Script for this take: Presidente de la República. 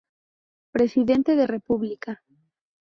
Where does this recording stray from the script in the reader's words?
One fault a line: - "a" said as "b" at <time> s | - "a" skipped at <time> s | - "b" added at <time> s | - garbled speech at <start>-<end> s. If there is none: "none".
- "la" skipped at 1.4 s